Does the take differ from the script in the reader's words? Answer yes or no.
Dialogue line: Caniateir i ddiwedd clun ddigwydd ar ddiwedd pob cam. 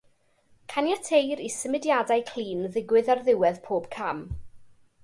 yes